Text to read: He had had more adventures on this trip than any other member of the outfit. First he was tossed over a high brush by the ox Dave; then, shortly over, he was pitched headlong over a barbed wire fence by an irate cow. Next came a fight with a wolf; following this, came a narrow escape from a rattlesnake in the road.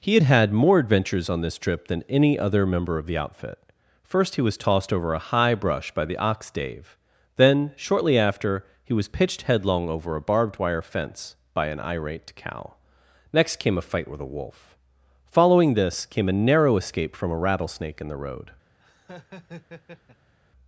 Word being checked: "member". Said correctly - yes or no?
yes